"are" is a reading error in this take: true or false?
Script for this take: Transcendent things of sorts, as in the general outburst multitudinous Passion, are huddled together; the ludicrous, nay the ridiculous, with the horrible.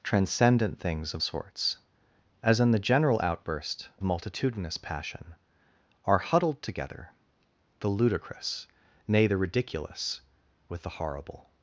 false